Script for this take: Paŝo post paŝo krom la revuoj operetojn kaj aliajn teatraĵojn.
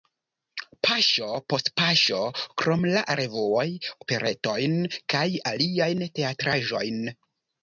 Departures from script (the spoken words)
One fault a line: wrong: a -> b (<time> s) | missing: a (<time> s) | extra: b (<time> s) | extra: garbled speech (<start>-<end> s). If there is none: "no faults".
no faults